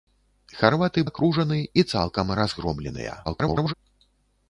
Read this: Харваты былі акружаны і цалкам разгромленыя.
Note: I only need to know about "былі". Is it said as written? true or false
false